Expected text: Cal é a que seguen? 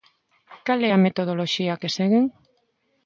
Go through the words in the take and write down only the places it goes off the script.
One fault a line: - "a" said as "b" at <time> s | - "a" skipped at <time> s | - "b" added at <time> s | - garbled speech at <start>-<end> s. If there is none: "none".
- "metodoloxía" added at 1.0 s